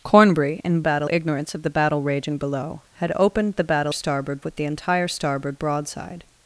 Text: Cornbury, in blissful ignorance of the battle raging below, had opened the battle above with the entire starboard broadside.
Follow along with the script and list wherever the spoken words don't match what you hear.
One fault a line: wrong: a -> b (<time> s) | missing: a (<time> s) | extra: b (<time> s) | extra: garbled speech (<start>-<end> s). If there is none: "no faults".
wrong: blissful -> battle (0.8 s)
wrong: above -> starboard (3.9 s)